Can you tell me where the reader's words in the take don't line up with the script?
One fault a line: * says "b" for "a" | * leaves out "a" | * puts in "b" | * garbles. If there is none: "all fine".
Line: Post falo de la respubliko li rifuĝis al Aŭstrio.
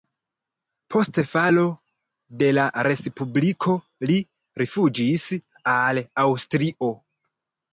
all fine